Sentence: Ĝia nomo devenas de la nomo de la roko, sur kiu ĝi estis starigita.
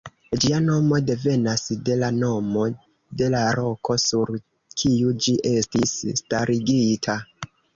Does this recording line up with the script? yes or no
yes